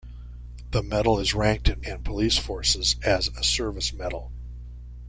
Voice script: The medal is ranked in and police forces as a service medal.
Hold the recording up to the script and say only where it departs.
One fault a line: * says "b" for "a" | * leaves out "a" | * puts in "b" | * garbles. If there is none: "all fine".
all fine